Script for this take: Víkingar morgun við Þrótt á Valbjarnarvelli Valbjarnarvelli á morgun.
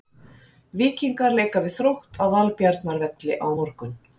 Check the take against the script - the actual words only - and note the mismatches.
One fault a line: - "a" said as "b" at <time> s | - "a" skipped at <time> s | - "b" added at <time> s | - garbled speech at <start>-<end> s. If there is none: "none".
- "morgun" said as "leika" at 1.4 s
- "Valbjarnarvelli" skipped at 3.4 s